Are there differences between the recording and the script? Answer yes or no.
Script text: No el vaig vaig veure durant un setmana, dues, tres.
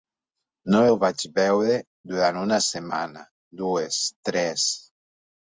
yes